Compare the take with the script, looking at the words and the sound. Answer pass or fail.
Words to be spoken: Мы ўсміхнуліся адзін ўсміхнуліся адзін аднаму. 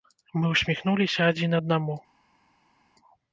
fail